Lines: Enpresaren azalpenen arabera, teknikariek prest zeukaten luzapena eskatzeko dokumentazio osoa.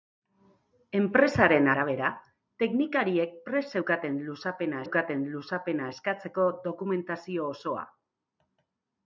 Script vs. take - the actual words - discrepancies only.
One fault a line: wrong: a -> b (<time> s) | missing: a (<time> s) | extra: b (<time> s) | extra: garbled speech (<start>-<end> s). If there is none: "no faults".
missing: azalpenen (1.7 s)
extra: zeukaten luzapena (4.8 s)